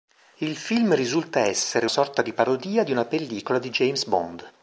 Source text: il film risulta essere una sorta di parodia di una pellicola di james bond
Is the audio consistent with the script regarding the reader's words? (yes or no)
no